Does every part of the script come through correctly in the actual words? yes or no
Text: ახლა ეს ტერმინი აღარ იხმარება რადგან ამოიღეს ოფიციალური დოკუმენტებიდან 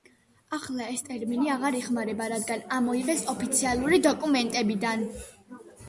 yes